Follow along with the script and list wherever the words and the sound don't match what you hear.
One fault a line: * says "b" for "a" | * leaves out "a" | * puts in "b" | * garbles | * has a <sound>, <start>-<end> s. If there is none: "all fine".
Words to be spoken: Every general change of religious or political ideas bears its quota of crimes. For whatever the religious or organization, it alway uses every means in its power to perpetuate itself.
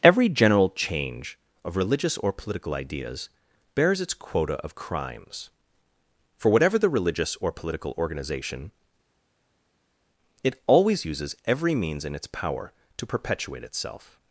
* puts in "political"
* says "always" for "alway"